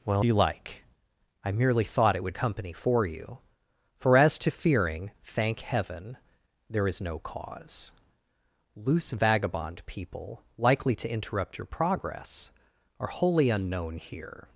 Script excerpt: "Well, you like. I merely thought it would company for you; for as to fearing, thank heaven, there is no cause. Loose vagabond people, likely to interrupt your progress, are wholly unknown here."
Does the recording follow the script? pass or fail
pass